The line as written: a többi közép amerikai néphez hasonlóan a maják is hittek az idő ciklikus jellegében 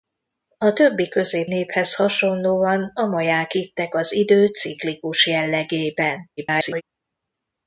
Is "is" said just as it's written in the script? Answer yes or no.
no